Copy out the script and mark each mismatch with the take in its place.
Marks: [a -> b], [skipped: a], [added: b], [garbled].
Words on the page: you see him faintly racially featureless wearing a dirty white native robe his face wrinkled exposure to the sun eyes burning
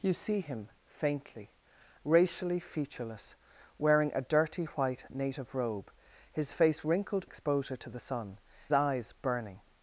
you see him faintly racially featureless wearing a dirty white native robe his face wrinkled exposure to the sun eyes burning